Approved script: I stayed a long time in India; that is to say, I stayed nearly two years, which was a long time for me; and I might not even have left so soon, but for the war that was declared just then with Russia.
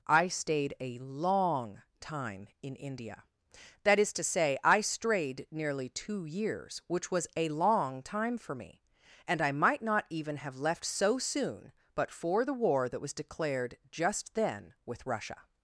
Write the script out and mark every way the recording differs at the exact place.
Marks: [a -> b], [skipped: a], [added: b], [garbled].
I stayed a long time in India; that is to say, I [stayed -> strayed] nearly two years, which was a long time for me; and I might not even have left so soon, but for the war that was declared just then with Russia.